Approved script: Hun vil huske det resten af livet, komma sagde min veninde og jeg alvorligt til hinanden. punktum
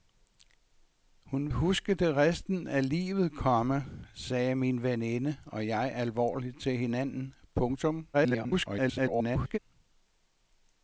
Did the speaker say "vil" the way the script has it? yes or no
no